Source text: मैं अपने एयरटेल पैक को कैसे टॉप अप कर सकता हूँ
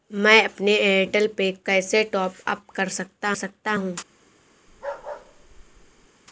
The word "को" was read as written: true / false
false